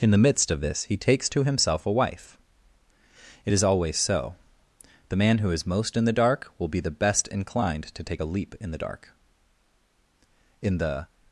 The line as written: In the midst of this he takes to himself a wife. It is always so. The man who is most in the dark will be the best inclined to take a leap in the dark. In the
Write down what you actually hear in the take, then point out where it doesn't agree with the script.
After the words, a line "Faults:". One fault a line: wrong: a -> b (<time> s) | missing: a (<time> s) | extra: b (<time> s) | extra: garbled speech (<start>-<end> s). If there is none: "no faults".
In the midst of this he takes to himself a wife. It is always so. The man who is most in the dark will be the best inclined to take a leap in the dark. In the
Faults:
no faults